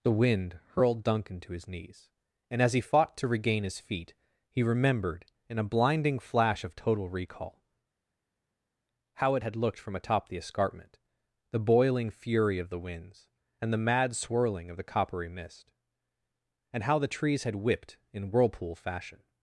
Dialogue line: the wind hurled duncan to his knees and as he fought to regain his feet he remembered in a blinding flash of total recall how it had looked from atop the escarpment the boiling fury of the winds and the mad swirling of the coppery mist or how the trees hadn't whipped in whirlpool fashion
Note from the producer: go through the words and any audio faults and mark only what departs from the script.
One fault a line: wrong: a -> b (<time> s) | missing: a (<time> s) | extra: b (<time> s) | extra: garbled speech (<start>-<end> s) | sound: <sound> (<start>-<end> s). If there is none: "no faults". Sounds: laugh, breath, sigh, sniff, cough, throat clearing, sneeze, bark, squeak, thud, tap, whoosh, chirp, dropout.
wrong: or -> and (16.7 s)
wrong: hadn't -> had (17.4 s)